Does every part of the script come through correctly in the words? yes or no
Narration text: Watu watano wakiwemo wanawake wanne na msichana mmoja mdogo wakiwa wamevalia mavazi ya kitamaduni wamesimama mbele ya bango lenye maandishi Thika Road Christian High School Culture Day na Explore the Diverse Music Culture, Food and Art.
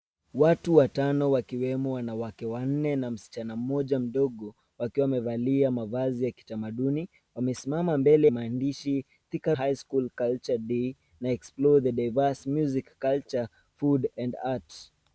no